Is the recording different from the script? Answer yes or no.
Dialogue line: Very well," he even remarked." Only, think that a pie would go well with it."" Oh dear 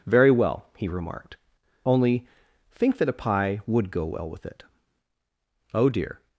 yes